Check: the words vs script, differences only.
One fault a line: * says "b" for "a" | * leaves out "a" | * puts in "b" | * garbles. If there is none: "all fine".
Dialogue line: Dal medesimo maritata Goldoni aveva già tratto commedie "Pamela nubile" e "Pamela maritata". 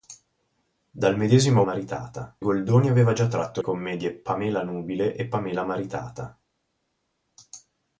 all fine